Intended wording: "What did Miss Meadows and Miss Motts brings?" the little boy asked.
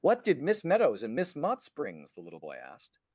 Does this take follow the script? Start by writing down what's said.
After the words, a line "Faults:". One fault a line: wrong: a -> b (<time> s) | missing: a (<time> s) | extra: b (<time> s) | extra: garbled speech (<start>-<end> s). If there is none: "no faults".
"What did Miss Meadows and Miss Motts brings?" the little boy asked.
Faults:
no faults